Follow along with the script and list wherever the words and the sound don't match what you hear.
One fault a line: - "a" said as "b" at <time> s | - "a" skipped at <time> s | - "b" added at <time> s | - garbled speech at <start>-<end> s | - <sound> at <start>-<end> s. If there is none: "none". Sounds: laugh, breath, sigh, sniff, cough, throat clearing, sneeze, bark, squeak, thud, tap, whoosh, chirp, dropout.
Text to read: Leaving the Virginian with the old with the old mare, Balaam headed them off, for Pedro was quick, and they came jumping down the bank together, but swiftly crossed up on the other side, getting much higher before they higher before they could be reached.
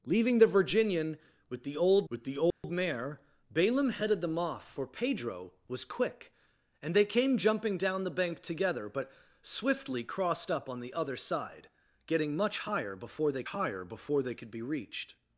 - dropout at 2.5-2.6 s